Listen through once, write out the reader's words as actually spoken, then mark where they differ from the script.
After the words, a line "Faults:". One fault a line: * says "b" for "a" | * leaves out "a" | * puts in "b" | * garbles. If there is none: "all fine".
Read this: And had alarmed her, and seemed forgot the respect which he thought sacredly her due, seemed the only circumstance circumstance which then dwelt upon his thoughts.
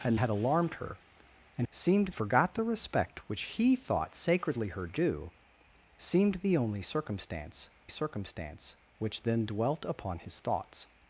And had alarmed her, and seemed forgot the respect which he thought sacredly her due, seemed the only circumstance circumstance which then dwelt upon his thoughts.
Faults:
all fine